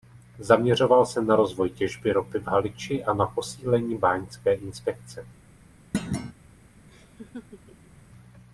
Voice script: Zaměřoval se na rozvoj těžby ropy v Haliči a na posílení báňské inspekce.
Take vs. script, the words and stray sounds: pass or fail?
fail